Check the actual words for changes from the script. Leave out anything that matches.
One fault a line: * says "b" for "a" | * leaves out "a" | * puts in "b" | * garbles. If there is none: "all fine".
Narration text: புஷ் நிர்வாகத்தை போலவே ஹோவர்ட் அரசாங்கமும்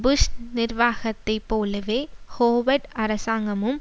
all fine